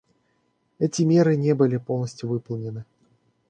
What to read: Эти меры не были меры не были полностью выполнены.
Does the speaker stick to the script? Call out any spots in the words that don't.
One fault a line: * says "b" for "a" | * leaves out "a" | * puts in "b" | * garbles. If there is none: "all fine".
* leaves out "меры не были"